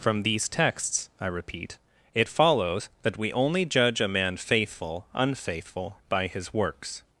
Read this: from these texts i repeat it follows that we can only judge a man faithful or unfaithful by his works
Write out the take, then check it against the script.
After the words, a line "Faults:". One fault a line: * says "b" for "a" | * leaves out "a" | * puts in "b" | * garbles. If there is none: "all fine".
from these texts i repeat it follows that we only judge a man faithful unfaithful by his works
Faults:
* leaves out "can"
* leaves out "or"